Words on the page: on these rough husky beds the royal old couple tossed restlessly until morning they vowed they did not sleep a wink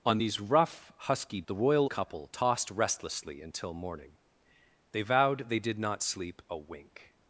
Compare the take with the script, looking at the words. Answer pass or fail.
fail